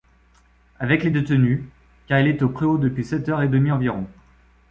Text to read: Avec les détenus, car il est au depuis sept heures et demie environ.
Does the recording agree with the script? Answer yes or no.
no